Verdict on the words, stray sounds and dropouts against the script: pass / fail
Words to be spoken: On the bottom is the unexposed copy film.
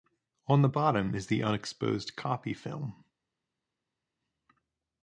pass